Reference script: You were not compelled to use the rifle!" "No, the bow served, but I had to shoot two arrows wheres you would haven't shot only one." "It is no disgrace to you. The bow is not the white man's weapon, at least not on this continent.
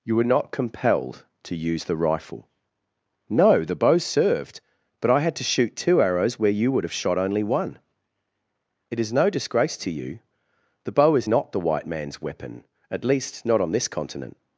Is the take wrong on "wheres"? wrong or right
wrong